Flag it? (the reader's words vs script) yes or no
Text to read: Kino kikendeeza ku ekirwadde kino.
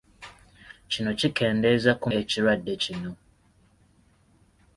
no